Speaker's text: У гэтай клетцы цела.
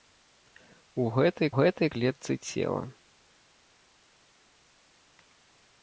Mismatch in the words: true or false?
true